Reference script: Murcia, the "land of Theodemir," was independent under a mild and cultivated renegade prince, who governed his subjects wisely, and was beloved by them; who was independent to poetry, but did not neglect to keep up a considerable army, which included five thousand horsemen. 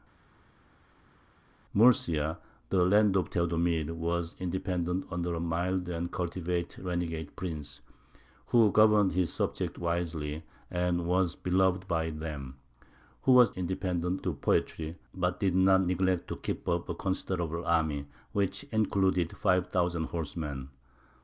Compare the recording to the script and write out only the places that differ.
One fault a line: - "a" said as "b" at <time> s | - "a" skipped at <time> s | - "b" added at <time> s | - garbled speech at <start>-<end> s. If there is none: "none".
none